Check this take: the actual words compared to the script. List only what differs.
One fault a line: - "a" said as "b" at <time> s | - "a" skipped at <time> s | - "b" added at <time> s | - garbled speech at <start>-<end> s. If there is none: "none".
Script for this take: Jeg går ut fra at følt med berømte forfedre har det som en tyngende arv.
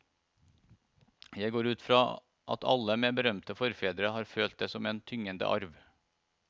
- "følt" said as "alle" at 2.7 s
- "følt" added at 4.3 s